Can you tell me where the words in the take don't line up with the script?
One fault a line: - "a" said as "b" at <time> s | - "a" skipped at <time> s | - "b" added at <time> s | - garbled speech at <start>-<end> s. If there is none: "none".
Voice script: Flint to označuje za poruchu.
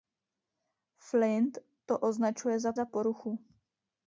- "za" added at 2.7 s